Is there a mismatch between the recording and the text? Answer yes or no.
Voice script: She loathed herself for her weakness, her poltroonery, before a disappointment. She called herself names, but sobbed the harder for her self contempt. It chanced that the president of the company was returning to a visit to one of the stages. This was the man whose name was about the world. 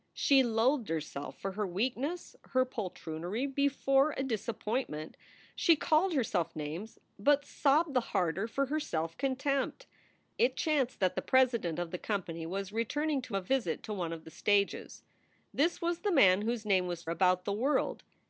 no